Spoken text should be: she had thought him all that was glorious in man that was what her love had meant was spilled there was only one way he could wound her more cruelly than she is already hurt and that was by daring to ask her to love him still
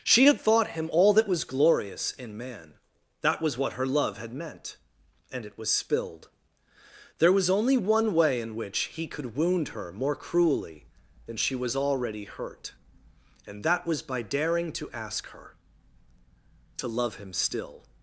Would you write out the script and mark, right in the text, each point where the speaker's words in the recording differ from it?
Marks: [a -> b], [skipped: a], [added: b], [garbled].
she had thought him all that was glorious in man that was what her love had meant [added: and it] was spilled there was only one way [added: in which] he could wound her more cruelly than she [is -> was] already hurt and that was by daring to ask her to love him still